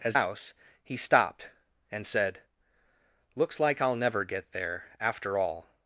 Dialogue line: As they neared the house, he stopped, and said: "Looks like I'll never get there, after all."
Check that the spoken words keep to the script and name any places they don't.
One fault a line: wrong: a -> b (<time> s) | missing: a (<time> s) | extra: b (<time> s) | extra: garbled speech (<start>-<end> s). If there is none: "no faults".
missing: they neared the (0.2 s)